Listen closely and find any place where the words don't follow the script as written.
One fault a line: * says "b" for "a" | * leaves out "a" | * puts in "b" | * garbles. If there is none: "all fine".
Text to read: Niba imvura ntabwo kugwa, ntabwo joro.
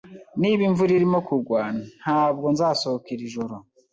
* says "irimo" for "ntabwo"
* puts in "nzasohoka iri"